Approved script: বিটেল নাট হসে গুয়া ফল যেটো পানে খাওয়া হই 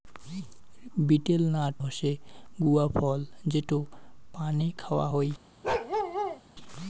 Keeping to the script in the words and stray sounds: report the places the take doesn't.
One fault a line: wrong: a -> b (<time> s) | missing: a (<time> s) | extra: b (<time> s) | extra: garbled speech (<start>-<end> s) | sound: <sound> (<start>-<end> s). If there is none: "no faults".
sound: bark (5.6-6.4 s)